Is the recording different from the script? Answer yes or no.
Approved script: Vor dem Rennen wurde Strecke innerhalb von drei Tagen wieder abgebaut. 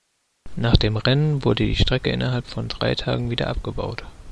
yes